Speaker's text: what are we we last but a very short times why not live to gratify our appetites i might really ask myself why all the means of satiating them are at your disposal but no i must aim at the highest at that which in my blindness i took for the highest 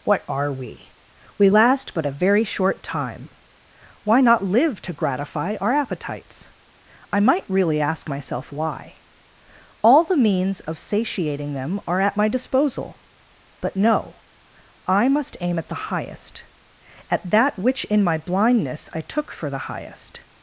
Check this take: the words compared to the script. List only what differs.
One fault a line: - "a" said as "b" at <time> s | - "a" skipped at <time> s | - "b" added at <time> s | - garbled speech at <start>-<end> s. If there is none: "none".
- "times" said as "time" at 2.8 s
- "your" said as "my" at 12.2 s